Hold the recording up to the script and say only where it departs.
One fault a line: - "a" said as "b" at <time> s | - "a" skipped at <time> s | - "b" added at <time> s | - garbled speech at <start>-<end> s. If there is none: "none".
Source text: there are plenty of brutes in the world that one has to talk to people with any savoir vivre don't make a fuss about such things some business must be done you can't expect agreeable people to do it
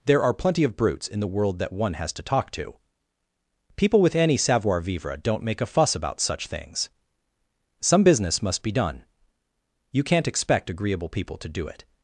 none